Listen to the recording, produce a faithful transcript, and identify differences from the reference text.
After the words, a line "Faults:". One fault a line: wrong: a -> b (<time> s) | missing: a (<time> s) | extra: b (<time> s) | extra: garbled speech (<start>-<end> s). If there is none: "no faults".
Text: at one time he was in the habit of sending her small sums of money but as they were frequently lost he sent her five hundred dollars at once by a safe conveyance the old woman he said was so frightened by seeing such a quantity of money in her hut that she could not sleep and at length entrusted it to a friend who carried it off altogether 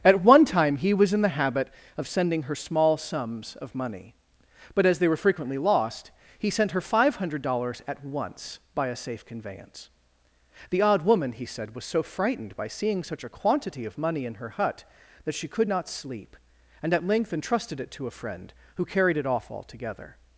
at one time he was in the habit of sending her small sums of money but as they were frequently lost he sent her five hundred dollars at once by a safe conveyance the odd woman he said was so frightened by seeing such a quantity of money in her hut that she could not sleep and at length entrusted it to a friend who carried it off altogether
Faults:
wrong: old -> odd (10.8 s)